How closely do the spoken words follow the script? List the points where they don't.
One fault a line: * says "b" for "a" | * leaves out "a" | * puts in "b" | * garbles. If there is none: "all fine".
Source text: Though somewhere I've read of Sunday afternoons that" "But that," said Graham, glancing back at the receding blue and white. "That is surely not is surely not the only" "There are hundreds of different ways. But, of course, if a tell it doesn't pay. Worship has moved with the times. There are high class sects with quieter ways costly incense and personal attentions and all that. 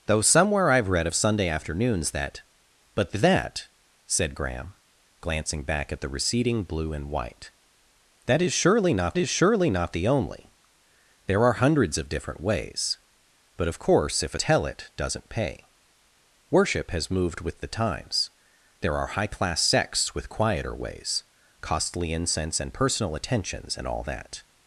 all fine